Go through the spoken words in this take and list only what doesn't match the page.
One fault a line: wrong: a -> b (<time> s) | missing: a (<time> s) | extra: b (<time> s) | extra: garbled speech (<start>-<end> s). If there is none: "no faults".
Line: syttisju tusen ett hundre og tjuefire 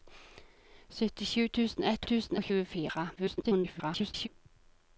wrong: hundre -> tusen (2.1 s)
extra: garbled speech (3.2-4.3 s)